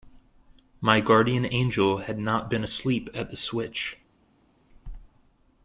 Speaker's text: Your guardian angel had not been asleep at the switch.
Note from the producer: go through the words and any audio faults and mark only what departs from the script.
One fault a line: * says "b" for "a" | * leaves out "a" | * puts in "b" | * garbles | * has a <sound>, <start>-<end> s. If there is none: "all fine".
* says "My" for "Your"